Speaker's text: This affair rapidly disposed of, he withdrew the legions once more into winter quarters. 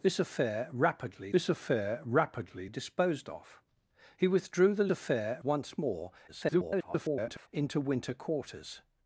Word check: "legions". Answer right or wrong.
wrong